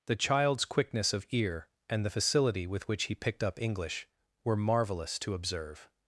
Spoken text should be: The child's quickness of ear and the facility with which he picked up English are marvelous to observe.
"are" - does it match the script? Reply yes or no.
no